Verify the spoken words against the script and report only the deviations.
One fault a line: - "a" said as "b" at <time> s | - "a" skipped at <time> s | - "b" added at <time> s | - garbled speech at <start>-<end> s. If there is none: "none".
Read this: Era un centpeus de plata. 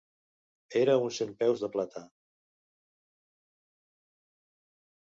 none